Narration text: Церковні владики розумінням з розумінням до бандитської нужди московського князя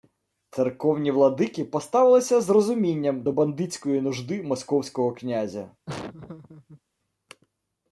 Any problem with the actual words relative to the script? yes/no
yes